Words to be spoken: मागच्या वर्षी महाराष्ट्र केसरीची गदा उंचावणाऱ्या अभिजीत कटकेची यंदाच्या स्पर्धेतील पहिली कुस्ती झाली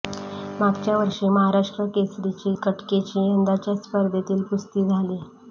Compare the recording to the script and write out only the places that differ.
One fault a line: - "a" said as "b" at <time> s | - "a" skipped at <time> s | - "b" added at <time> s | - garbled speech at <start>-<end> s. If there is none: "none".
- "गदा उंचावणाऱ्या अभिजीत" skipped at 2.5 s
- "पहिली" skipped at 4.4 s